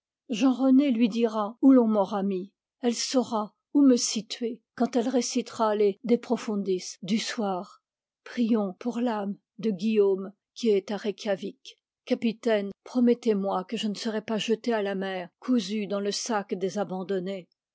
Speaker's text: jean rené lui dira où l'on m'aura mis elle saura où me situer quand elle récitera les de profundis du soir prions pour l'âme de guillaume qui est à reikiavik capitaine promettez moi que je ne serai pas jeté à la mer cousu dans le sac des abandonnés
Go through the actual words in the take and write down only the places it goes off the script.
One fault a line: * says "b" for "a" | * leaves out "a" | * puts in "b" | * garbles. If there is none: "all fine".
all fine